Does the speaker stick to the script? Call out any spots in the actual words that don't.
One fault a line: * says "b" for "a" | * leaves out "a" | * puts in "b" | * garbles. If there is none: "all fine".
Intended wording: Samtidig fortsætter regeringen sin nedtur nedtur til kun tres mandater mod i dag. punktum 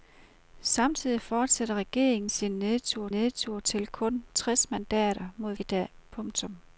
all fine